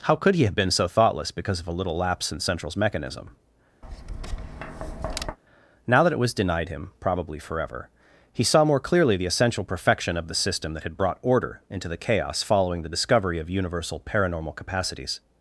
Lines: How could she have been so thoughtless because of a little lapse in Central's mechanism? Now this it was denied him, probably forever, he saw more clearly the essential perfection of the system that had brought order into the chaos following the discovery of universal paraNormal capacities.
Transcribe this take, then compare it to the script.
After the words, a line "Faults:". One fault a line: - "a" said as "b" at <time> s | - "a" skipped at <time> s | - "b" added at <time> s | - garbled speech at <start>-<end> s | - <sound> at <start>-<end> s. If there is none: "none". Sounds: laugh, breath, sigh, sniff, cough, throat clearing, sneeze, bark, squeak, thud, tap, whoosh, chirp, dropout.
How could he have been so thoughtless because of a little lapse in Central's mechanism? Now that it was denied him, probably forever, he saw more clearly the essential perfection of the system that had brought order into the chaos following the discovery of universal paraNormal capacities.
Faults:
- "she" said as "he" at 0.3 s
- tap at 3.8-5.4 s
- "this" said as "that" at 6.0 s